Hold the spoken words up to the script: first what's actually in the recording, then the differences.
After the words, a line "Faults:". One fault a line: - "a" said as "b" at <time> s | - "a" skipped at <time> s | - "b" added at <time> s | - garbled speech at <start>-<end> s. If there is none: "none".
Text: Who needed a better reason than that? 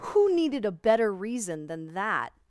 Who needed a better reason than that?
Faults:
none